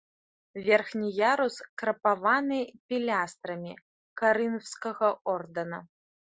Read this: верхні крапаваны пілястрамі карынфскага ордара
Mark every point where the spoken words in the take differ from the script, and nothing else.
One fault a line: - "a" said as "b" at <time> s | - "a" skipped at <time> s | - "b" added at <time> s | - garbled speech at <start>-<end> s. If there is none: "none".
- "ярус" added at 1.3 s